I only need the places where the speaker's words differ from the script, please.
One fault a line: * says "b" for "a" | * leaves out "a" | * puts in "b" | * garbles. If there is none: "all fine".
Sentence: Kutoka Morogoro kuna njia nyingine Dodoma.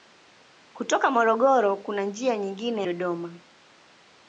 all fine